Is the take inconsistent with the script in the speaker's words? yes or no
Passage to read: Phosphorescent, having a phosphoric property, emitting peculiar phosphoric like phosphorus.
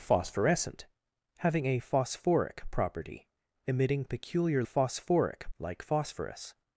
no